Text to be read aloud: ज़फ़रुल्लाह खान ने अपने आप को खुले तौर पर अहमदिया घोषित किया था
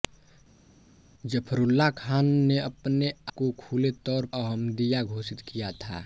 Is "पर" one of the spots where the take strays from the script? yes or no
yes